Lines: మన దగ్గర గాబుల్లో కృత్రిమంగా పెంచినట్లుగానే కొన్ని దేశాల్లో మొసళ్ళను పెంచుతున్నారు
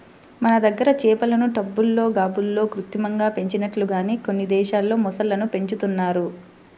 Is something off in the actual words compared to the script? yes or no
yes